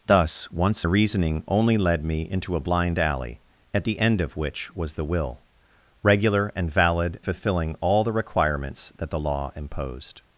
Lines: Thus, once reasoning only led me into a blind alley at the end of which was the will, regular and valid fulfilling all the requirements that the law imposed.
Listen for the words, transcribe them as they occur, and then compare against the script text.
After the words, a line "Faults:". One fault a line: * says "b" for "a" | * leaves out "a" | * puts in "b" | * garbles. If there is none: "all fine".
Thus, once reasoning only led me into a blind alley at the end of which was the will, regular and valid fulfilling all the requirements that the law imposed.
Faults:
all fine